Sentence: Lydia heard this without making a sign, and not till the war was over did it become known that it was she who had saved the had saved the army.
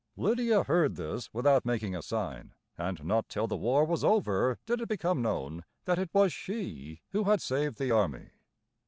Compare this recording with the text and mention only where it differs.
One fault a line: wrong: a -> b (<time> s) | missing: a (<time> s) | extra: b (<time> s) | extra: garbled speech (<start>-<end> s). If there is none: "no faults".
missing: had saved the (7.9 s)